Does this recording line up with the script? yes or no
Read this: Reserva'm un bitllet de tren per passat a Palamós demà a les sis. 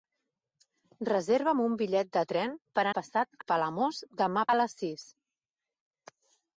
yes